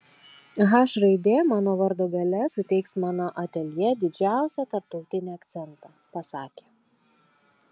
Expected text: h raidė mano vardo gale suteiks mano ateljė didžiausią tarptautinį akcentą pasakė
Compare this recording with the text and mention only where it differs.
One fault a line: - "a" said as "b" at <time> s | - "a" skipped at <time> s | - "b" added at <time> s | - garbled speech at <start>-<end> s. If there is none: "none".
none